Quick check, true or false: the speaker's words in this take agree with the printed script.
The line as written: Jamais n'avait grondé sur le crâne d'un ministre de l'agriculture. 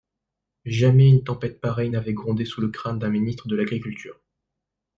false